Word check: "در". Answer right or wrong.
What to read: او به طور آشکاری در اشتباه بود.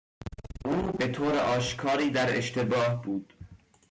right